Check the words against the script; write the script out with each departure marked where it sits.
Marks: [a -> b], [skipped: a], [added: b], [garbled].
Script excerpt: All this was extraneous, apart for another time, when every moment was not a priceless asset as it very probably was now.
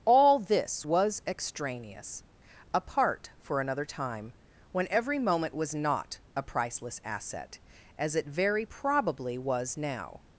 All this was extraneous, apart for another time, when every moment was not a priceless asset as it very probably was now.